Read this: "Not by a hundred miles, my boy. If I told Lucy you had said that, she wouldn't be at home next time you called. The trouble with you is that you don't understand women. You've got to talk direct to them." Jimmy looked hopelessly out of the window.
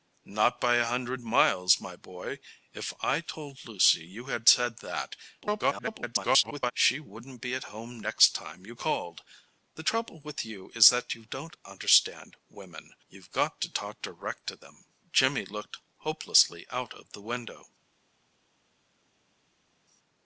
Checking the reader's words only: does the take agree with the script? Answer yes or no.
no